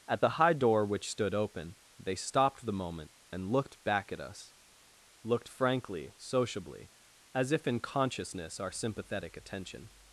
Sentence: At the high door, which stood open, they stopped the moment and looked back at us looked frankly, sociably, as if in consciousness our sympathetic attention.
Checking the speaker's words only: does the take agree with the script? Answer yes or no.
yes